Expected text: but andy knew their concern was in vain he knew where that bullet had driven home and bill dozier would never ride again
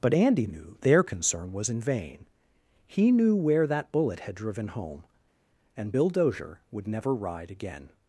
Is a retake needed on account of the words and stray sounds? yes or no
no